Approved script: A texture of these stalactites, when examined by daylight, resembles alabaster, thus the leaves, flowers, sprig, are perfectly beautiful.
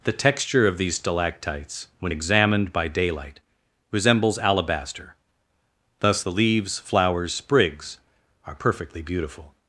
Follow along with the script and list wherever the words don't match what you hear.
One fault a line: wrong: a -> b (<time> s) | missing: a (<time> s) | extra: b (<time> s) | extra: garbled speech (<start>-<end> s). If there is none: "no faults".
wrong: A -> The (0.0 s)
wrong: sprig -> sprigs (7.3 s)